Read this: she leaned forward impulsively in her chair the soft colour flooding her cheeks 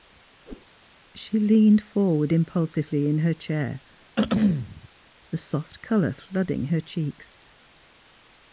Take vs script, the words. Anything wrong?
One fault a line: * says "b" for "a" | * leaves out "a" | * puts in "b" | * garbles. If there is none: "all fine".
all fine